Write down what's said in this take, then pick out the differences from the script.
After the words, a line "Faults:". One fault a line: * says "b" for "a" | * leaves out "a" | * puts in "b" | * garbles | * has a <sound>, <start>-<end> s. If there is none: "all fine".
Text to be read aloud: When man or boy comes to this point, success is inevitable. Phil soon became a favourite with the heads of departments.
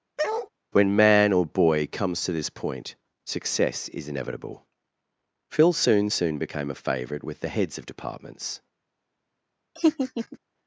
When man or boy comes to this point, success is inevitable. Phil soon soon became a favourite with the heads of departments.
Faults:
* has a bark, 0.2-0.5 s
* puts in "soon"
* has a laugh, 9.8-10.4 s